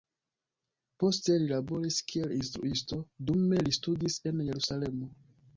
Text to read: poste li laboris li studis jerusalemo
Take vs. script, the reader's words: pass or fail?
fail